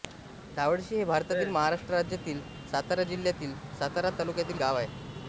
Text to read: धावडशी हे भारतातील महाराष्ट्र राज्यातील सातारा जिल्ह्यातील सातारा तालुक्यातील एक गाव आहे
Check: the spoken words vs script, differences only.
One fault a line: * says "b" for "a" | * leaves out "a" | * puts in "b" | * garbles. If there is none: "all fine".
* leaves out "एक"